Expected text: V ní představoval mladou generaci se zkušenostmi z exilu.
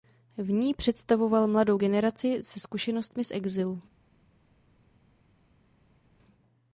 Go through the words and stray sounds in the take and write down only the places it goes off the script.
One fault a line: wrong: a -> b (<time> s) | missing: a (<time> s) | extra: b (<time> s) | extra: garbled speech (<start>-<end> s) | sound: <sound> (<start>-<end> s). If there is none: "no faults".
no faults